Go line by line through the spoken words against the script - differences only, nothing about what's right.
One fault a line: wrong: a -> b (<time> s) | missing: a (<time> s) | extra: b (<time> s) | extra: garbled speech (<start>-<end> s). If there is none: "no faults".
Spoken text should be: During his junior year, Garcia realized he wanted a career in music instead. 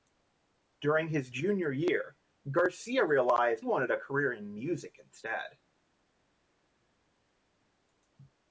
missing: he (3.7 s)